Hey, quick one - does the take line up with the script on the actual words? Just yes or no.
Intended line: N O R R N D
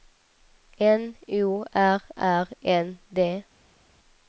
yes